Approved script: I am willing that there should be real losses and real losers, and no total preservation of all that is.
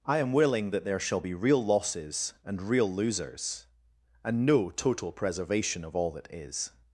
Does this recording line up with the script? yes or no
no